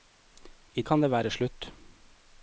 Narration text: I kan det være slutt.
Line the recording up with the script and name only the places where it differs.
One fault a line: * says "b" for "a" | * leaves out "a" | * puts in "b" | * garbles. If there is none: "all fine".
all fine